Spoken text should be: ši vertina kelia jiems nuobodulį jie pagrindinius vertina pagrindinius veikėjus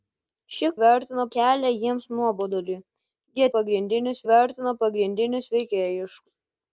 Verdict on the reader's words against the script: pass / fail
pass